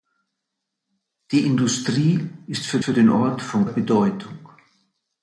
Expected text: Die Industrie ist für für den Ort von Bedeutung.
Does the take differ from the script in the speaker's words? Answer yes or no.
no